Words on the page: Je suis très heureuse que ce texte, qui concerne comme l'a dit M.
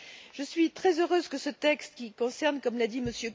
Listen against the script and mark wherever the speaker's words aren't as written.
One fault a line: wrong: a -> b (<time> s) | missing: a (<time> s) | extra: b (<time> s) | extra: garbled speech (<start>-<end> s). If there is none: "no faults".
no faults